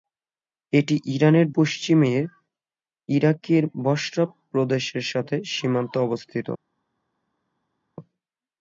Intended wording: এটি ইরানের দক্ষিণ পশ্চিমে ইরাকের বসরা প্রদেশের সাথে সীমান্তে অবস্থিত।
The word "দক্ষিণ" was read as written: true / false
false